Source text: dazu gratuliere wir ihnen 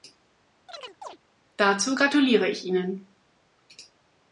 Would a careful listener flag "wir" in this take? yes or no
yes